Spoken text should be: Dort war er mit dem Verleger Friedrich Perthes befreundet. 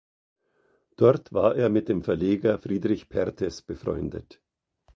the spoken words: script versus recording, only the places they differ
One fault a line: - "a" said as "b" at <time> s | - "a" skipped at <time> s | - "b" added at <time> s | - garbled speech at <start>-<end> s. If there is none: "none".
none